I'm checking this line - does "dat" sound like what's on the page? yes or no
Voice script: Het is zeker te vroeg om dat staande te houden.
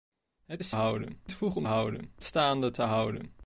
no